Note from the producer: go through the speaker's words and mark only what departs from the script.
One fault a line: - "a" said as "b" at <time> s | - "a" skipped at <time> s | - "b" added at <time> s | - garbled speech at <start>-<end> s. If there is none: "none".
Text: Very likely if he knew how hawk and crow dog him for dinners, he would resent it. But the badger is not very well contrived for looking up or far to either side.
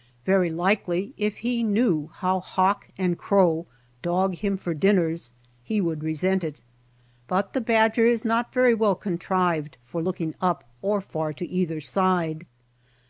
none